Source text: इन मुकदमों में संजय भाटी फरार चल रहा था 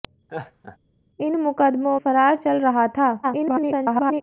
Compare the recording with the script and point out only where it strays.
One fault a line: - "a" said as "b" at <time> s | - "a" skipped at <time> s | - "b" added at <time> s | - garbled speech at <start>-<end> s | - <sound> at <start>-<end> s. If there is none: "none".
- laugh at 0.3-0.8 s
- "में संजय भाटी" skipped at 2.0 s
- garbled speech at 3.2-4.2 s